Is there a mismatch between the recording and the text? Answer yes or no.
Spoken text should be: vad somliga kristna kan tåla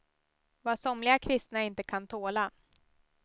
yes